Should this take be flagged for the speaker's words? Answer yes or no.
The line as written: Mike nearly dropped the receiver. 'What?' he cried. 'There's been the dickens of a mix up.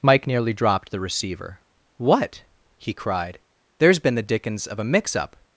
no